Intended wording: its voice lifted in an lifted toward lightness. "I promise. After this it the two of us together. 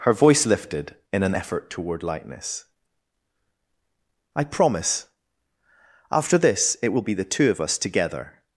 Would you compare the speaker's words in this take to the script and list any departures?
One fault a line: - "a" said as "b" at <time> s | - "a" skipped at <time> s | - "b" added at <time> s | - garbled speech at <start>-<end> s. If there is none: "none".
- "its" said as "her" at 0.0 s
- "lifted" said as "effort" at 1.3 s
- "will be" added at 6.9 s